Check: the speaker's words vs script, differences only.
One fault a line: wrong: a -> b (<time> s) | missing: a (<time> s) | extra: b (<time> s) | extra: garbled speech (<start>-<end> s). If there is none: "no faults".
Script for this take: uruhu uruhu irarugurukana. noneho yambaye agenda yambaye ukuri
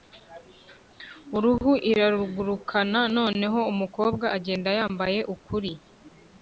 missing: uruhu (1.7 s)
wrong: yambaye -> umukobwa (3.7 s)